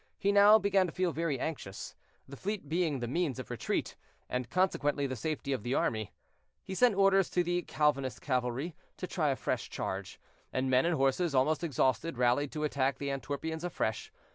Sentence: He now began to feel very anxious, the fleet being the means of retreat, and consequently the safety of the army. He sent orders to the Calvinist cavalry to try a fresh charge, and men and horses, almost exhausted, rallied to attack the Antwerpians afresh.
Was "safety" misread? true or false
false